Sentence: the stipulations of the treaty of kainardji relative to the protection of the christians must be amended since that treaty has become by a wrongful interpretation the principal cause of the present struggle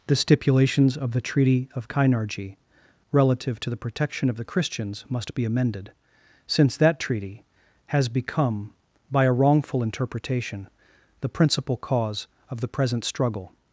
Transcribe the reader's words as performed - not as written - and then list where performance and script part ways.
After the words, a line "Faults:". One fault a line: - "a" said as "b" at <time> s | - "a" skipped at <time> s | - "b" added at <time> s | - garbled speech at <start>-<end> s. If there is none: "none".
the stipulations of the treaty of kainardji relative to the protection of the christians must be amended since that treaty has become by a wrongful interpretation the principal cause of the present struggle
Faults:
none